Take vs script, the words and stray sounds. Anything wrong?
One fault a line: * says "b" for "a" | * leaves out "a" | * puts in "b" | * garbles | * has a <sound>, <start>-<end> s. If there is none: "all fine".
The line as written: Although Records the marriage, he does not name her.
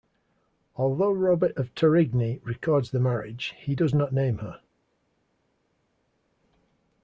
* puts in "Robert of Torigny"